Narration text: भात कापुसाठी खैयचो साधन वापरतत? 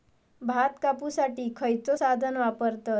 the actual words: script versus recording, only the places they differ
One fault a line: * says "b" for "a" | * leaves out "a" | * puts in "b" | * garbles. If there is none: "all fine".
all fine